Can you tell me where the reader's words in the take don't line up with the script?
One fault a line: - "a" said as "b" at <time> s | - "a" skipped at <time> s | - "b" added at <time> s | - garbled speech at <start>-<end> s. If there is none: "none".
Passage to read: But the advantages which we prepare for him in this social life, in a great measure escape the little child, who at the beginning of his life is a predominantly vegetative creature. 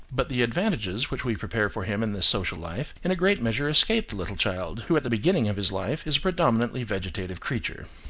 none